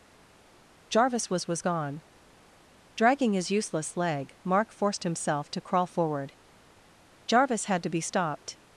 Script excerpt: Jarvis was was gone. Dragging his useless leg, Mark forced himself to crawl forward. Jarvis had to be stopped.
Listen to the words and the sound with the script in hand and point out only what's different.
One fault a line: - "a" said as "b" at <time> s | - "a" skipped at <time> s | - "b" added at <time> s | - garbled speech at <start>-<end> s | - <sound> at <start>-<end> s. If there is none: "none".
none